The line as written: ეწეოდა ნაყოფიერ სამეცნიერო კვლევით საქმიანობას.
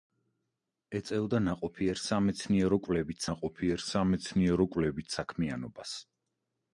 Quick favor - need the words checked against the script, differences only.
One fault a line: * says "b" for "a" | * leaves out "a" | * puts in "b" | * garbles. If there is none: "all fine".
* puts in "ნაყოფიერ სამეცნიერო კვლევით"